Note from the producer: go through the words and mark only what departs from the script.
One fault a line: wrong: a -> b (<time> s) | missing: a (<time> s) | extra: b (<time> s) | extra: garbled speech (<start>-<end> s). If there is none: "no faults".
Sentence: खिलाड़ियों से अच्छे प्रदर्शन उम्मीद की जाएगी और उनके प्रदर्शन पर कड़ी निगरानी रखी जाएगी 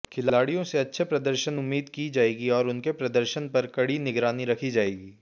no faults